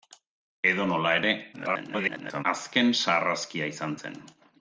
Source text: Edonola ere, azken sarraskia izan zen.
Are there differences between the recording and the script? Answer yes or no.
yes